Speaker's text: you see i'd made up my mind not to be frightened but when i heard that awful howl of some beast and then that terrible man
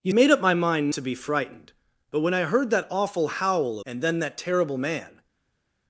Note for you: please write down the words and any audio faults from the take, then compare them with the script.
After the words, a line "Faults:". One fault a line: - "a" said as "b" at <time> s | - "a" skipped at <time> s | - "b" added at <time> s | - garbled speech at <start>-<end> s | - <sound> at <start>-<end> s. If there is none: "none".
you made up my mind to be frightened but when i heard that awful howl and then that terrible man
Faults:
- "see i'd" skipped at 0.1 s
- "not" skipped at 0.9 s
- "of some beast" skipped at 3.8 s